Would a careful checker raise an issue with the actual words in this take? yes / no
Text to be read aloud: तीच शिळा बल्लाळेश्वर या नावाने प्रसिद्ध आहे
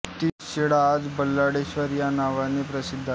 yes